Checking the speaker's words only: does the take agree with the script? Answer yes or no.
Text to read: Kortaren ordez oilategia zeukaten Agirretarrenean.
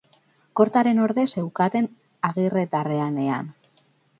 no